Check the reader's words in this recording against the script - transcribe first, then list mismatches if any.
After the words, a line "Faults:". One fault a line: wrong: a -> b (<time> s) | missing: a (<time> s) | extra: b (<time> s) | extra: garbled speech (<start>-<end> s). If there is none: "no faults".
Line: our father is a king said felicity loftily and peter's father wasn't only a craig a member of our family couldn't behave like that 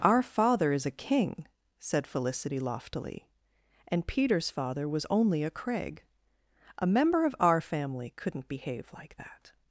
our father is a king said felicity loftily and peter's father was only a craig a member of our family couldn't behave like that
Faults:
wrong: wasn't -> was (4.9 s)